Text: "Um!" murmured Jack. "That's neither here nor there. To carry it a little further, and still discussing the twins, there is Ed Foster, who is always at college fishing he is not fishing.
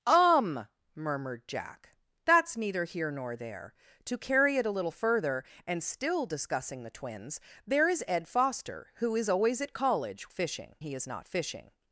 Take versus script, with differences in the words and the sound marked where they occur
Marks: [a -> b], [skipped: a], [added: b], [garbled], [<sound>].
"Um!" murmured Jack. "That's neither here nor there. To carry it a little further, and still discussing the twins, there is Ed Foster, who is always at college fishing he is not fishing.